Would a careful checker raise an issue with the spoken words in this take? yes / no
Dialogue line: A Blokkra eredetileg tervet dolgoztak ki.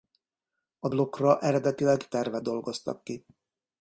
no